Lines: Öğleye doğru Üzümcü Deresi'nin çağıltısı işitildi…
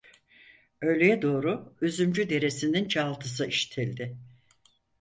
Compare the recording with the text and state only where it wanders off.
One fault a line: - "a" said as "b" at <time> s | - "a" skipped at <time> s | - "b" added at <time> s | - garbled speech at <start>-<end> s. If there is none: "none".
none